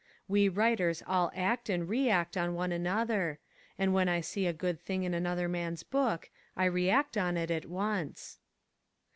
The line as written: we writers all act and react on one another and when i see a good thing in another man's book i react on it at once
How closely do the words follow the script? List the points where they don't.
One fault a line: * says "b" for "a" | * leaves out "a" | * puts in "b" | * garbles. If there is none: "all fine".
all fine